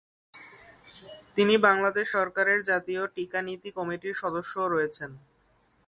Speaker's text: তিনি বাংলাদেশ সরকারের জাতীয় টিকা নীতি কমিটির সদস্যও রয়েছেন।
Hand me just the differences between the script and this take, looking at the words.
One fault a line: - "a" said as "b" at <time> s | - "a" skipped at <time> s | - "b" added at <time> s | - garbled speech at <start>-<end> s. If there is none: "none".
none